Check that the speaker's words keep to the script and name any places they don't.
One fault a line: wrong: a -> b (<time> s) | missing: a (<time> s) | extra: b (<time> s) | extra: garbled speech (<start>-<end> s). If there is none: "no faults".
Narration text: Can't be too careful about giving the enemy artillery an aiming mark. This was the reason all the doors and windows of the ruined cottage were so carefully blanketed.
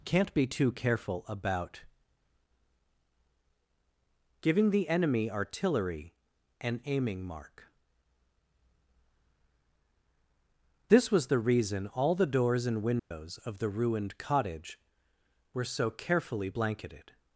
no faults